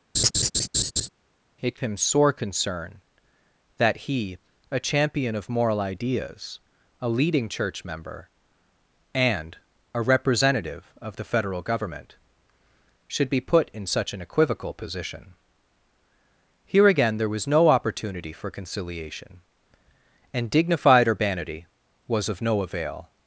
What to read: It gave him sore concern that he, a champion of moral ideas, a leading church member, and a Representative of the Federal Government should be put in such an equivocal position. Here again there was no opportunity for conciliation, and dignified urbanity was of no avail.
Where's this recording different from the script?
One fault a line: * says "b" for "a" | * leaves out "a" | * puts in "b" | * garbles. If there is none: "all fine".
* leaves out "gave"